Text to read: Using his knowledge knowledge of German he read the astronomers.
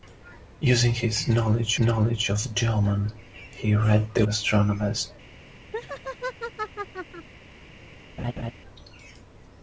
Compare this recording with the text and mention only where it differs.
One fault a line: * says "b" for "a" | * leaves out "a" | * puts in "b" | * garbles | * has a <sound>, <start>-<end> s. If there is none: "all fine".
* has a laugh, 5.7-7.3 s
* has a laugh, 8.2-8.5 s